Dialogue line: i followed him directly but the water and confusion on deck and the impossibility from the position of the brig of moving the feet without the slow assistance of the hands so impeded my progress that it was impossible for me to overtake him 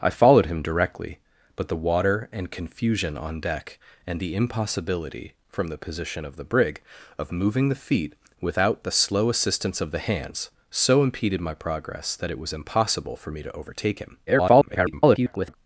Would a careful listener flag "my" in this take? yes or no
no